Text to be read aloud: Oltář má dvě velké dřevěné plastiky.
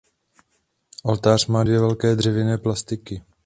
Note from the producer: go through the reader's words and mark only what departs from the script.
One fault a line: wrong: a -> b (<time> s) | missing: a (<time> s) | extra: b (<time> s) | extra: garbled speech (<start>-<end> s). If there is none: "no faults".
no faults